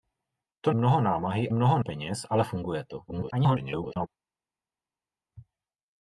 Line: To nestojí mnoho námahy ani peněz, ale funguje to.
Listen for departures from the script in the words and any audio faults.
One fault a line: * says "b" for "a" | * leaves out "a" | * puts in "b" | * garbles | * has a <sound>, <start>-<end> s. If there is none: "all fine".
* leaves out "nestojí"
* says "mnoho" for "ani"
* garbles